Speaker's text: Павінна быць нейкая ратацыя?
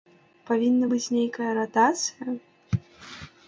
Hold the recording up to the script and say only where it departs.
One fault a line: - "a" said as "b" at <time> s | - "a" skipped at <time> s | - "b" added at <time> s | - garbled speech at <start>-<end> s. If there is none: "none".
none